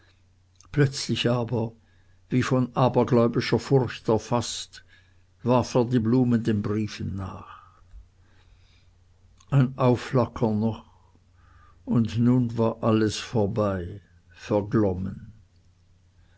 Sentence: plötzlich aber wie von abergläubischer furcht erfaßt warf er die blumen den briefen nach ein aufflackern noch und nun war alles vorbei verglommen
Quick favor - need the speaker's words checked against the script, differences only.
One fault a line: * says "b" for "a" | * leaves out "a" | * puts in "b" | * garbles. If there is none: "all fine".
all fine